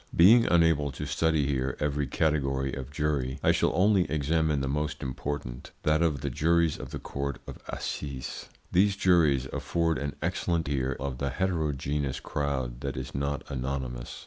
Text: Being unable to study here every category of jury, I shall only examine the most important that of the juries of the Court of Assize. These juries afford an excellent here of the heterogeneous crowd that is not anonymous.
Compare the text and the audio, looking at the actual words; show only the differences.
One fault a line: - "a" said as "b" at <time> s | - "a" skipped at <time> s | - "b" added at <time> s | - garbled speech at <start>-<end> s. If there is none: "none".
none